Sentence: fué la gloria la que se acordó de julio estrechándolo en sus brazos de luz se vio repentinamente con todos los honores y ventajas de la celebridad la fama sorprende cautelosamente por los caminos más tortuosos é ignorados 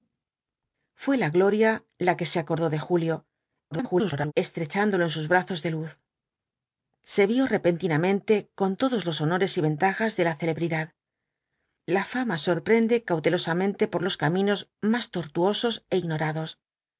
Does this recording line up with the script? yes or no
no